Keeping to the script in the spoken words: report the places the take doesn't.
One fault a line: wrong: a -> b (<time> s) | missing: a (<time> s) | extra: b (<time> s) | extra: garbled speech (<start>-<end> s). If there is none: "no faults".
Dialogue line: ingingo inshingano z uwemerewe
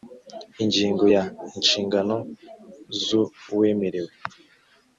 extra: ya (1.1 s)